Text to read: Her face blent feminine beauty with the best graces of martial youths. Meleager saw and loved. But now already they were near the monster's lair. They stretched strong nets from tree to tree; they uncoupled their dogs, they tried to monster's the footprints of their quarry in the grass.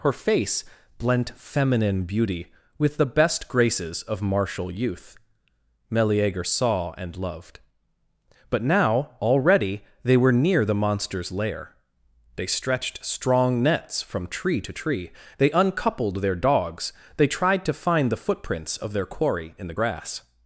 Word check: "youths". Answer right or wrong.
wrong